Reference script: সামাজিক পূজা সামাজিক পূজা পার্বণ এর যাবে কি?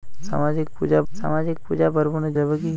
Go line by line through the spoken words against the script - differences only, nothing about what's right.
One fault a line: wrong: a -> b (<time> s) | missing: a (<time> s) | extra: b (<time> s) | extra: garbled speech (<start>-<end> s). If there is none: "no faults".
no faults